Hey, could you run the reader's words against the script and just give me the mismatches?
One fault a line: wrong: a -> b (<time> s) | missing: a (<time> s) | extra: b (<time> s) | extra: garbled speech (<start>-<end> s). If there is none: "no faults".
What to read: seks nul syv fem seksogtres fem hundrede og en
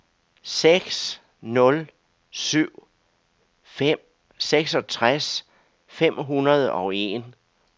no faults